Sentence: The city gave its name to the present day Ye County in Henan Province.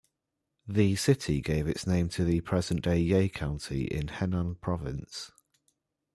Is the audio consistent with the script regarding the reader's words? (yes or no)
yes